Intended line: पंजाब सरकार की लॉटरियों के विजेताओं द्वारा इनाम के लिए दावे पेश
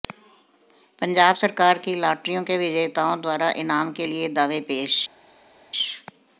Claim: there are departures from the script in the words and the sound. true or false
false